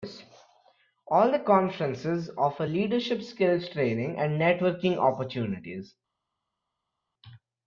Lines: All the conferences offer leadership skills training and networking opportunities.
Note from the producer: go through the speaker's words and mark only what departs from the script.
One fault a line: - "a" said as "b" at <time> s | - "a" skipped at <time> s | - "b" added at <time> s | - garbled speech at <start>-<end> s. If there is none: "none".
none